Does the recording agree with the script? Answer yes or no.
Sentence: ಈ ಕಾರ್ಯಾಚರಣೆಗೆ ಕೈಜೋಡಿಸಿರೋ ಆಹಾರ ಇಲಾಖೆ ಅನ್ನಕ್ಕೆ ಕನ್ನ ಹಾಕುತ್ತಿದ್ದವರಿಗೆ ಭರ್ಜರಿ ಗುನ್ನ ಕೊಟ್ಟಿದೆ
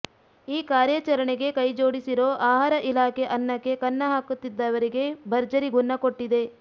yes